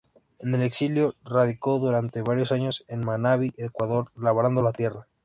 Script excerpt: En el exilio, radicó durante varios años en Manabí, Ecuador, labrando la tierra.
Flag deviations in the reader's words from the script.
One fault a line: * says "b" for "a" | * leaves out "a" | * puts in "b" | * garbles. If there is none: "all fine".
all fine